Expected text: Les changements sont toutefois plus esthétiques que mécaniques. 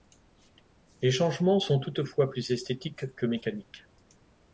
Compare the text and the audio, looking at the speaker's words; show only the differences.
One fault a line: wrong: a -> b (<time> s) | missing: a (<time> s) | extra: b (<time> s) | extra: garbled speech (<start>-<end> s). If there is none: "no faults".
no faults